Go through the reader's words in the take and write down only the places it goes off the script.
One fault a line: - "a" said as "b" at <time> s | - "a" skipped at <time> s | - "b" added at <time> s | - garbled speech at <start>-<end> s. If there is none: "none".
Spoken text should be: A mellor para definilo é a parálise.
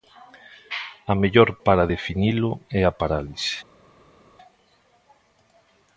none